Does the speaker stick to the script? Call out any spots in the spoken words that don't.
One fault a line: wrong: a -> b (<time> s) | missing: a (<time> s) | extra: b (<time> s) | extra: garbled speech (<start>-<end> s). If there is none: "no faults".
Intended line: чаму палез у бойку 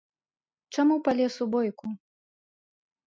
no faults